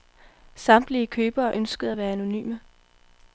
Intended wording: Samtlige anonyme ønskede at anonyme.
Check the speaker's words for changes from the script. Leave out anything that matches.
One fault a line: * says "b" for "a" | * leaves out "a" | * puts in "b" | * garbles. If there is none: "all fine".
* says "købere" for "anonyme"
* puts in "være"